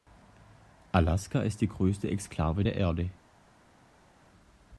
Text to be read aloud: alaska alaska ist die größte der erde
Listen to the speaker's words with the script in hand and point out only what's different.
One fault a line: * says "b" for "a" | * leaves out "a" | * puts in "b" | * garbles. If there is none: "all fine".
* leaves out "alaska"
* puts in "exklave"